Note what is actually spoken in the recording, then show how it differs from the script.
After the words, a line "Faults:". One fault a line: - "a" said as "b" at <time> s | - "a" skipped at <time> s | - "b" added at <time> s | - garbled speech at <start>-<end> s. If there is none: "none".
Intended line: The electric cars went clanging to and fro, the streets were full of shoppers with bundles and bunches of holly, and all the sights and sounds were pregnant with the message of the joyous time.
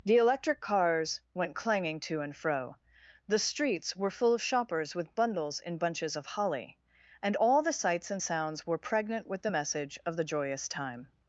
The electric cars went clanging to and fro, the streets were full of shoppers with bundles in bunches of holly, and all the sights and sounds were pregnant with the message of the joyous time.
Faults:
- "and" said as "in" at 5.6 s